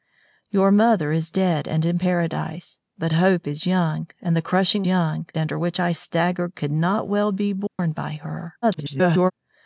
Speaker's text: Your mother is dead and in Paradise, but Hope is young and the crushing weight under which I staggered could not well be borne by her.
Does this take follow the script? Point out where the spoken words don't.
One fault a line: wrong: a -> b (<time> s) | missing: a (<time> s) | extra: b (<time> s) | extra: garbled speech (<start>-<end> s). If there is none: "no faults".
wrong: weight -> young (4.9 s)
extra: garbled speech (8.6-9.3 s)